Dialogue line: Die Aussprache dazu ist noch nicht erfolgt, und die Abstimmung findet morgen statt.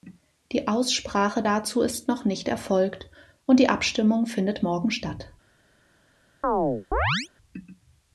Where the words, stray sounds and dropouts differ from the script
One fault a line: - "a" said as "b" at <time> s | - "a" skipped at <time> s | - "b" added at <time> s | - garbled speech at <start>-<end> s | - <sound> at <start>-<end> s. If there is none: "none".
- chirp at 6.4-7.3 s